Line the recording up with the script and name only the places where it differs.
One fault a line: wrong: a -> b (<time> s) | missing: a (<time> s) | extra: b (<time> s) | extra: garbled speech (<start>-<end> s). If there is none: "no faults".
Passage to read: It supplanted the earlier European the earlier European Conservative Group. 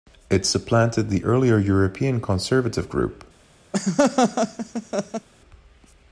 missing: the earlier European (2.2 s)